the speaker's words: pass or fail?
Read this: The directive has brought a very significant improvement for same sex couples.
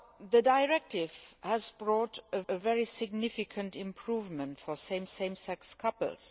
fail